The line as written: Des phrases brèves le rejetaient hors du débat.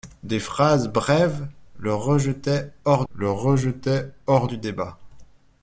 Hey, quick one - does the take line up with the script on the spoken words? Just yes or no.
no